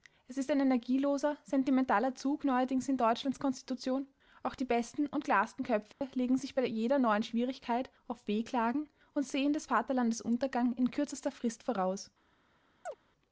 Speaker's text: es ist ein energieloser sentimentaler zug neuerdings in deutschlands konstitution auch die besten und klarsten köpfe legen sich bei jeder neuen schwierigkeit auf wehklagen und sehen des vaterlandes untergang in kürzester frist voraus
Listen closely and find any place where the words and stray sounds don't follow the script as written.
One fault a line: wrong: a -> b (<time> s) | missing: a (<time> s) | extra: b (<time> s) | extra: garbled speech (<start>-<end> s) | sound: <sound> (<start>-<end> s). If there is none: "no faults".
sound: dropout (5.9-6.0 s)
sound: chirp (12.9-13.0 s)